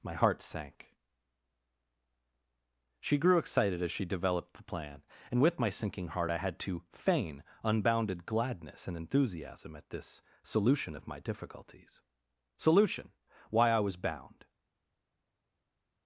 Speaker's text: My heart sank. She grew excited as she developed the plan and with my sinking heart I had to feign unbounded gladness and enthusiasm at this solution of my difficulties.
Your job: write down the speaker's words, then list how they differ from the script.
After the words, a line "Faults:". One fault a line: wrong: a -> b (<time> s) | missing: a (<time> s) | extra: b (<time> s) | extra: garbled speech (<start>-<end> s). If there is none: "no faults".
My heart sank. She grew excited as she developed the plan and with my sinking heart I had to feign unbounded gladness and enthusiasm at this solution of my difficulties. Solution! Why I was bound
Faults:
extra: Solution Why I was bound (12.6 s)